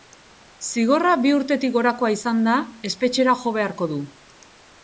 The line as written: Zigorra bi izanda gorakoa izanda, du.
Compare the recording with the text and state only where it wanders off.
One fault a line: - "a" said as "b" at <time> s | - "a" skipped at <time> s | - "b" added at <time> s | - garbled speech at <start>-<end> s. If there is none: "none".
- "izanda" said as "urtetik" at 1.4 s
- "espetxera jo beharko" added at 2.9 s